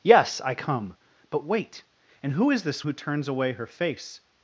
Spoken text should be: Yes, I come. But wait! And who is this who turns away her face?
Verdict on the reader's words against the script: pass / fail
pass